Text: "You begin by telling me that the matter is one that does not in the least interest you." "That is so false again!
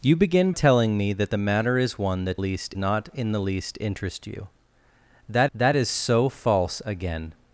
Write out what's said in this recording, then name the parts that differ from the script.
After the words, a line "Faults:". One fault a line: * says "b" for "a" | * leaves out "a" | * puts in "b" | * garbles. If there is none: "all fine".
"You begin telling me that the matter is one that least not in the least interest you." "That that is so false again!
Faults:
* leaves out "by"
* says "least" for "does"
* puts in "that"